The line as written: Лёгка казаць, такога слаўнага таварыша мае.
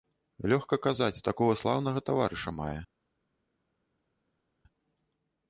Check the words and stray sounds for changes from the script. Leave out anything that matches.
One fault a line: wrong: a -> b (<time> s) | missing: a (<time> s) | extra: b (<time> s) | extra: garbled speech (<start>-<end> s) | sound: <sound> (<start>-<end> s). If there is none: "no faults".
no faults